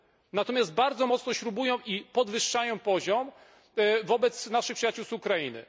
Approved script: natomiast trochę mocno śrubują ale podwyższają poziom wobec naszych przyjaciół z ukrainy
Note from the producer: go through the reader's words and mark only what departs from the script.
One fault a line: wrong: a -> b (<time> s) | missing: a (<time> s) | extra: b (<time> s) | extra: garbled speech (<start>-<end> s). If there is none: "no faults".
wrong: trochę -> bardzo (0.7 s)
wrong: ale -> i (1.9 s)